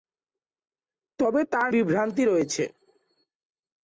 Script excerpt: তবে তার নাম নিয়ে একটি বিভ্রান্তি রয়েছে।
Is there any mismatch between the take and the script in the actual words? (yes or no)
yes